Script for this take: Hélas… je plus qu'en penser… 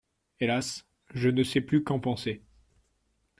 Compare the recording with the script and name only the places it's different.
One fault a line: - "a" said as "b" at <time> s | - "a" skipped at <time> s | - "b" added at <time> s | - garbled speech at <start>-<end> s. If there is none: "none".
- "ne sais" added at 1.3 s